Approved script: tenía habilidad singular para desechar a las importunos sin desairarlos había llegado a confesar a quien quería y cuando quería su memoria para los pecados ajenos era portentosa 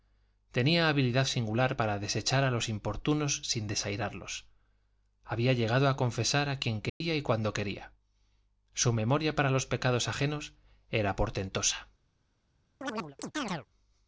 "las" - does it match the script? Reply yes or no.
no